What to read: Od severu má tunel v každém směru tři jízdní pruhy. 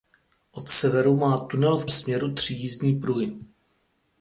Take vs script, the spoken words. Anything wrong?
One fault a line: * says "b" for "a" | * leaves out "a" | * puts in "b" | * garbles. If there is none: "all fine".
* leaves out "každém"